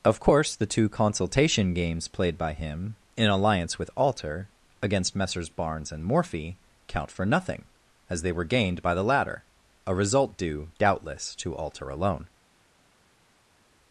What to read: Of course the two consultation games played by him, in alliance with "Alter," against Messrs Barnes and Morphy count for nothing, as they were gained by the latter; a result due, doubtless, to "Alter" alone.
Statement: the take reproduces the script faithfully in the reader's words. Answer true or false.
true